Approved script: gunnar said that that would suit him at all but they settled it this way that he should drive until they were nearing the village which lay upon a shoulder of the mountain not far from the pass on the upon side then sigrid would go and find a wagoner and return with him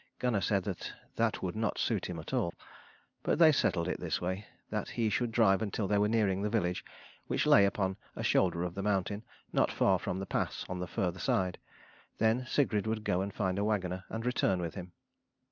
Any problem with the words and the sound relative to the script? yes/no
yes